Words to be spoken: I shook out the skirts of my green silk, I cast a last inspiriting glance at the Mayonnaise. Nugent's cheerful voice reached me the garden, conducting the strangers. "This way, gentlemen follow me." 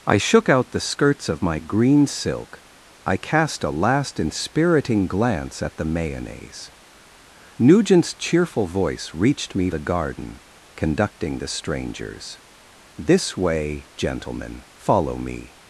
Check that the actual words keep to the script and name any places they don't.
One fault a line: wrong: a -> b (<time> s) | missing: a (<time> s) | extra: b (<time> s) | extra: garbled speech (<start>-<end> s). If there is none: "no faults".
no faults